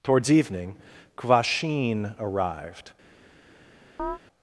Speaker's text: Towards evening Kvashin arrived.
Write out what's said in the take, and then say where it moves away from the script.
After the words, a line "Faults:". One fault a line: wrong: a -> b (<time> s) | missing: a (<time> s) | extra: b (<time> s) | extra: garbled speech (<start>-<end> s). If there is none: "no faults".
Towards evening Kvashin arrived.
Faults:
no faults